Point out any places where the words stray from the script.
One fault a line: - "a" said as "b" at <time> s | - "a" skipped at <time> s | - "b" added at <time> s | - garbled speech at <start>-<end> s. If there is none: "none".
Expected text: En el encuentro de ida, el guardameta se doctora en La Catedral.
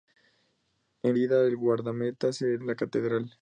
- "el encuentro de" skipped at 1.2 s
- "doctora" skipped at 2.6 s